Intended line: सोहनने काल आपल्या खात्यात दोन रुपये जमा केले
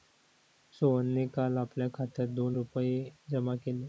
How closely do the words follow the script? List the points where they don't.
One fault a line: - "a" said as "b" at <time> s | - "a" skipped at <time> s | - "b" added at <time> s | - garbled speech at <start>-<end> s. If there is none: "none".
none